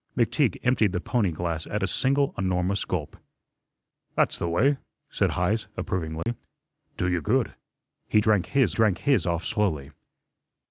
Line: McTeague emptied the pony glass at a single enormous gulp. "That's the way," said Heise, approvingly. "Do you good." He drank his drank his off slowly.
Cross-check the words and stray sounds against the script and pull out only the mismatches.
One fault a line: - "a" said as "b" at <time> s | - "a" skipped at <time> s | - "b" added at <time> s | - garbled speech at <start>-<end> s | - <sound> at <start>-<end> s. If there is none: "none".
- dropout at 6.2-6.3 s